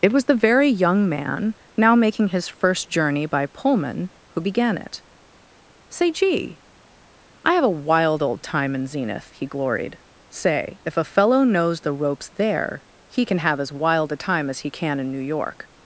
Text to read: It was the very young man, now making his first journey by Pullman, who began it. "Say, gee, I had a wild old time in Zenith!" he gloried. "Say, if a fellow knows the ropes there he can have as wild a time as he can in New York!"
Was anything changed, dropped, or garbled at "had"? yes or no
yes